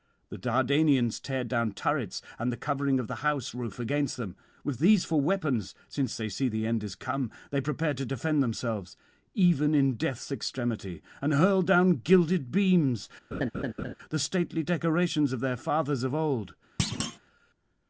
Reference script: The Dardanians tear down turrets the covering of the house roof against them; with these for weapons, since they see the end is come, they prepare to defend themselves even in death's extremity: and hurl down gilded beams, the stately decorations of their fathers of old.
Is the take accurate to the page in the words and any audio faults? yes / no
no